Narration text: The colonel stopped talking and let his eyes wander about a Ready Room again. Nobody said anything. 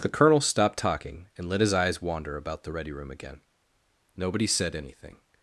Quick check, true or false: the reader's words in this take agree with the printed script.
false